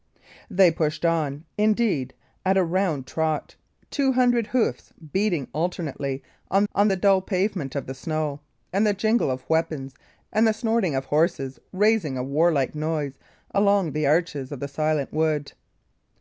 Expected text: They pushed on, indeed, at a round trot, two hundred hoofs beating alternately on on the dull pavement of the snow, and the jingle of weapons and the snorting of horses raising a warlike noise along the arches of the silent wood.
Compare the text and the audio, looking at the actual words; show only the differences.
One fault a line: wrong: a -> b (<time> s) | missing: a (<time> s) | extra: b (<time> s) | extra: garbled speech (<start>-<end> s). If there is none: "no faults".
no faults